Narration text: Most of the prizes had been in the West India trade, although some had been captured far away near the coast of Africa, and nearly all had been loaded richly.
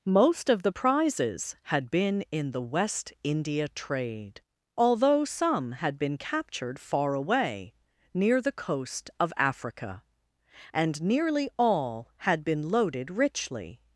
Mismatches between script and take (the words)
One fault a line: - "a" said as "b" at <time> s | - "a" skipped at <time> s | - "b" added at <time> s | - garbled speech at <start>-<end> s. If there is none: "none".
none